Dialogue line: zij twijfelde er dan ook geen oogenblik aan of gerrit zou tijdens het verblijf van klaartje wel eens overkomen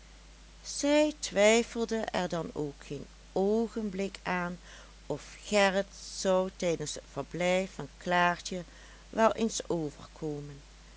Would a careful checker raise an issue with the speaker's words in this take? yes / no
no